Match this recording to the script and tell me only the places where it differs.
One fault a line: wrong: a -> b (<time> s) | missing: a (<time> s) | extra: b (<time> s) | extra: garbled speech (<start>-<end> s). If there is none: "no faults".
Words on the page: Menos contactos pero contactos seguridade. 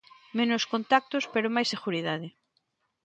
wrong: contactos -> máis (1.6 s)